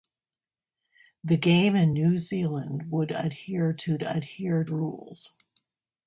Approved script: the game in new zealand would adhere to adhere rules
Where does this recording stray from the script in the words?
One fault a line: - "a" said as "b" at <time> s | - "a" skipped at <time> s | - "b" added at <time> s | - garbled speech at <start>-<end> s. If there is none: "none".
none